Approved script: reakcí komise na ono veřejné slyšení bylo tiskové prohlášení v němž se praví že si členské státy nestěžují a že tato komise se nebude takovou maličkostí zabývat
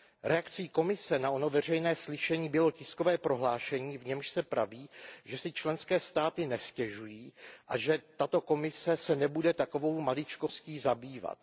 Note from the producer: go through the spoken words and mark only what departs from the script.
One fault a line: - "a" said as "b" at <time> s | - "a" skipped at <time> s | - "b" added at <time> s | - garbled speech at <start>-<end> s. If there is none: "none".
none